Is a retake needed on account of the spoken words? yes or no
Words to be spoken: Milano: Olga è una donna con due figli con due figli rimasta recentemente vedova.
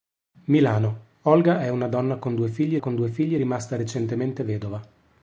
no